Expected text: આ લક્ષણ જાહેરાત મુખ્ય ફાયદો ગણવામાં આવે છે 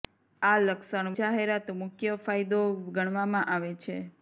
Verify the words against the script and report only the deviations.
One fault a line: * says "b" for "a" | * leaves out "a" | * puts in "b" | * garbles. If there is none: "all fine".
all fine